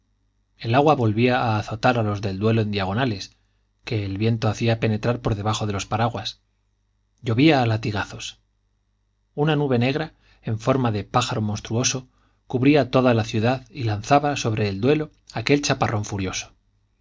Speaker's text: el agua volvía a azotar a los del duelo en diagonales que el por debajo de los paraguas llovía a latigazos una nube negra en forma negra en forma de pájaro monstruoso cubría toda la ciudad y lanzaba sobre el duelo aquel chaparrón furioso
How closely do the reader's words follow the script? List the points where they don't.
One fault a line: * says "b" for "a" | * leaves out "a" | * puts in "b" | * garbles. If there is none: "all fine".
* puts in "viento hacía penetrar"
* leaves out "negra en forma"